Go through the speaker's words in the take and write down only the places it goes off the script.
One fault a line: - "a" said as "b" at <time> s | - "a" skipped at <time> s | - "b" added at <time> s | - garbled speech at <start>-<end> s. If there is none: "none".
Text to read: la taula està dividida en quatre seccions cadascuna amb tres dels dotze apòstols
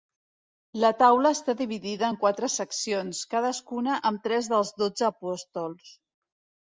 none